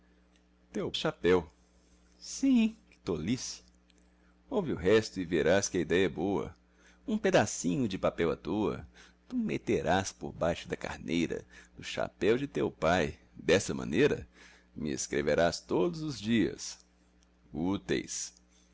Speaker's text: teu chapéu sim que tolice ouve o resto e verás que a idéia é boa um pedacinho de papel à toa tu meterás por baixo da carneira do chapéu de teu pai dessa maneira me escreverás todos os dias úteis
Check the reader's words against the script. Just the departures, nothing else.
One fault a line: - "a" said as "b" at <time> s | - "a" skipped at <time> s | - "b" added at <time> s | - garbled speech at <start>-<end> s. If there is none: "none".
none